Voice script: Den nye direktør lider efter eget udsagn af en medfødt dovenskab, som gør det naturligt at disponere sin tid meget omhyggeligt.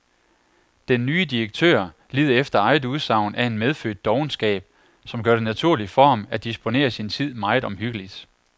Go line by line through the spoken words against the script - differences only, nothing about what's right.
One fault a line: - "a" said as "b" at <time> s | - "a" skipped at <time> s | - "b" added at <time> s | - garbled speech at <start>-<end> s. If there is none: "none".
- "for ham" added at 5.9 s